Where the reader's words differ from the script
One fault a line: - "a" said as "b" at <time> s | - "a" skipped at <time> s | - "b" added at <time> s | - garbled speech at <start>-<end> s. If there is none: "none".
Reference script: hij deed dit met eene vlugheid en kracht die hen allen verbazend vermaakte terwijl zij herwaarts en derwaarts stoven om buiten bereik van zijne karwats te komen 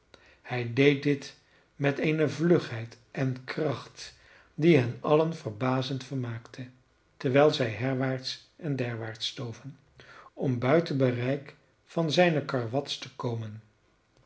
none